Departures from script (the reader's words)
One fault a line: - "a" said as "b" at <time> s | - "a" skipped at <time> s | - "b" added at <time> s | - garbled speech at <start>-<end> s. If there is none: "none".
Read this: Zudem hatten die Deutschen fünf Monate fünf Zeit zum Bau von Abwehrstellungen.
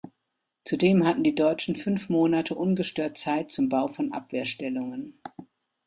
- "fünf" said as "ungestört" at 2.5 s